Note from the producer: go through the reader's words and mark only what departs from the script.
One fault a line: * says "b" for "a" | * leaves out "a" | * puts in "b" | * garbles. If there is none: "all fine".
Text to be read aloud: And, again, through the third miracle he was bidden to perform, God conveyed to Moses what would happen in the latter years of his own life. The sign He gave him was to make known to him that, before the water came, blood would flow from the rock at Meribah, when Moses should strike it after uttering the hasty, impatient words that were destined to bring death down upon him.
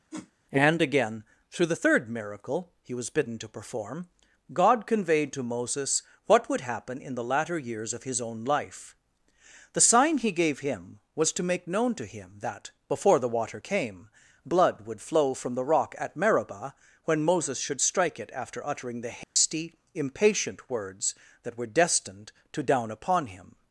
* leaves out "bring death"